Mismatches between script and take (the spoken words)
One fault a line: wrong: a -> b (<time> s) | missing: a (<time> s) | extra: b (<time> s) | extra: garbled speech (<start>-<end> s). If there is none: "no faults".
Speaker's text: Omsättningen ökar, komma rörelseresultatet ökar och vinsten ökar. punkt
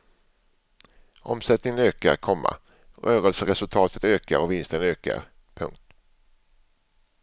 no faults